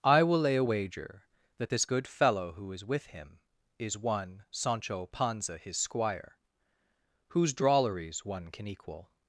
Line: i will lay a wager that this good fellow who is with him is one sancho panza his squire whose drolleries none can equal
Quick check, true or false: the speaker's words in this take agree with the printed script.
false